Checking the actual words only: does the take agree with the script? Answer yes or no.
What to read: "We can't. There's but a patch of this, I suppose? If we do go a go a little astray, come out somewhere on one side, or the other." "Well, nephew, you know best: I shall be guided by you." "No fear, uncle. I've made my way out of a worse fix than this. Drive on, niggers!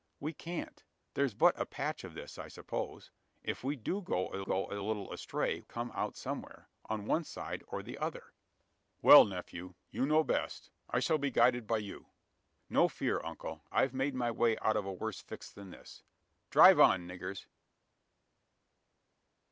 yes